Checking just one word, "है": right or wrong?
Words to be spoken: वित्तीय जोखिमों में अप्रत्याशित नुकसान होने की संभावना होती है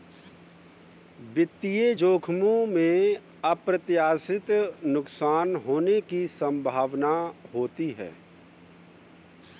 right